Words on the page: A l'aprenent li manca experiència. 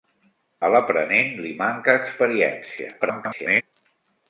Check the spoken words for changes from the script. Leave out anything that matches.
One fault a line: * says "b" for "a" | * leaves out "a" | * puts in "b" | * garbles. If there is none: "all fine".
* garbles